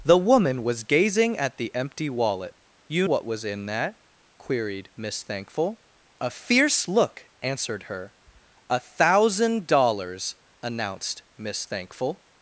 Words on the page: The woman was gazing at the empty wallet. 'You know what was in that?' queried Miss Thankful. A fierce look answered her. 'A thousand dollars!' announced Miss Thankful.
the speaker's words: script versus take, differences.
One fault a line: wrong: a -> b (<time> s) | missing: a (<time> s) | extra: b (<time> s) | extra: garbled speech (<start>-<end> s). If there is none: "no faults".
missing: know (3.1 s)